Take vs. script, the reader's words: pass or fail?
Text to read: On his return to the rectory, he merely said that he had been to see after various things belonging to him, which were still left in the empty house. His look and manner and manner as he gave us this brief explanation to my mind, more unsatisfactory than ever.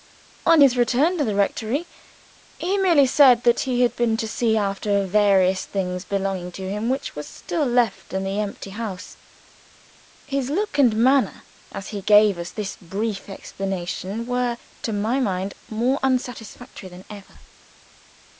fail